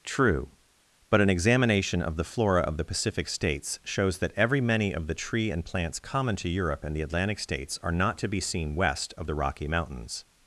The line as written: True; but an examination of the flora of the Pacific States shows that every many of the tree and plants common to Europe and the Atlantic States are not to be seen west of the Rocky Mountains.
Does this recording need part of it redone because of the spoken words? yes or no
no